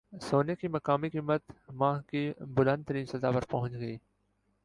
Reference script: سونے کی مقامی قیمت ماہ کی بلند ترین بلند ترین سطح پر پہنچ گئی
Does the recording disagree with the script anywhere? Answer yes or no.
yes